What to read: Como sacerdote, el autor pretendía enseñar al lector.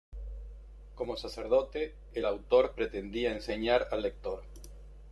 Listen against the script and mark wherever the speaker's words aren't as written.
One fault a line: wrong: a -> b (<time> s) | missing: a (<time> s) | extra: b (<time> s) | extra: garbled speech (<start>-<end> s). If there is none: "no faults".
no faults